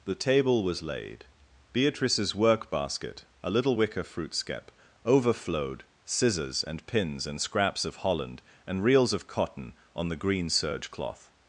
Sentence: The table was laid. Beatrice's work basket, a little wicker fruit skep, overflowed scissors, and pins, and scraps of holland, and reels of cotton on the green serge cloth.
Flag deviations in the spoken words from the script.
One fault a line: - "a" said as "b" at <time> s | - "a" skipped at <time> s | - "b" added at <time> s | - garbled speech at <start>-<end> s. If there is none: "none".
none